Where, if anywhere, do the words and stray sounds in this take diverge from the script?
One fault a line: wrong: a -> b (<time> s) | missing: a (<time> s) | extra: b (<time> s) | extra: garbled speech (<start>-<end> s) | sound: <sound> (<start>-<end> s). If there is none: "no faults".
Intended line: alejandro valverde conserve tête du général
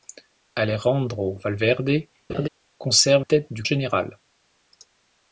sound: laugh (2.3-2.5 s)